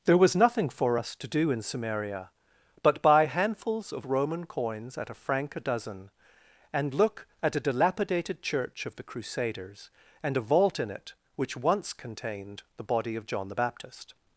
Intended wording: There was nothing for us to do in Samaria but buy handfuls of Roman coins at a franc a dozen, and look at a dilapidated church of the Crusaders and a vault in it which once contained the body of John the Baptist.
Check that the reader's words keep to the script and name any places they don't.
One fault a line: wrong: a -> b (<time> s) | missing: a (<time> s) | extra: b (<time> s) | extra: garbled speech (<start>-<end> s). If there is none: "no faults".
no faults